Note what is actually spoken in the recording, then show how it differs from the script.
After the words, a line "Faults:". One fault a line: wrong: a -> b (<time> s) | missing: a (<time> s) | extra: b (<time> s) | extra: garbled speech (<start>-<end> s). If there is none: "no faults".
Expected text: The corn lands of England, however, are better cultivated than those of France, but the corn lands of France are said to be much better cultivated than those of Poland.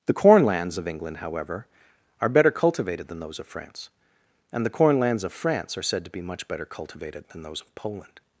The corn lands of England, however, are better cultivated than those of France, and the corn lands of France are said to be much better cultivated than those of Poland.
Faults:
wrong: but -> and (4.5 s)